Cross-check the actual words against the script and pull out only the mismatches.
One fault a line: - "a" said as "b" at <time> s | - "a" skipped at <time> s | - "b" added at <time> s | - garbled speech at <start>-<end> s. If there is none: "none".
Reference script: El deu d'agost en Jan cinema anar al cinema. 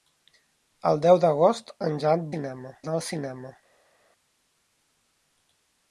none